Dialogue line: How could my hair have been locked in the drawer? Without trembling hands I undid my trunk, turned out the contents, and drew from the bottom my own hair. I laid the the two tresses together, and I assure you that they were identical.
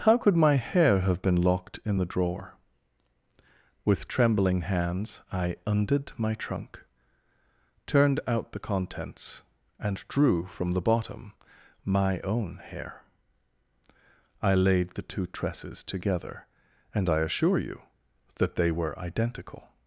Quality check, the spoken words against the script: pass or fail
fail